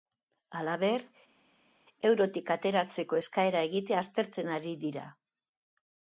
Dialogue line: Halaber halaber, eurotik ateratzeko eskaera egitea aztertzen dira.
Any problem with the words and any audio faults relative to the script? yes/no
yes